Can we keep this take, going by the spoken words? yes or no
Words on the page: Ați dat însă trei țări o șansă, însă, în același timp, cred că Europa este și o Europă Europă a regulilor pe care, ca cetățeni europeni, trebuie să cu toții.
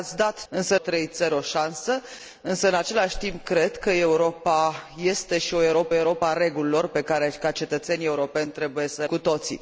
yes